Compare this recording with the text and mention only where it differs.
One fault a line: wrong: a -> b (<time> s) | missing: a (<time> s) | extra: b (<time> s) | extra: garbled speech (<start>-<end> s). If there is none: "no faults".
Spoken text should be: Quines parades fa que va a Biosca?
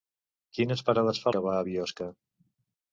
no faults